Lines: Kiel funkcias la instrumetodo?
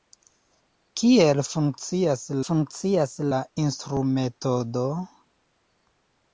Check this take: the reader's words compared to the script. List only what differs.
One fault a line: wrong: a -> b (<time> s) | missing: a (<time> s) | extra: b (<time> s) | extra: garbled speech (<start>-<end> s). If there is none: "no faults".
extra: funkcias (2.4 s)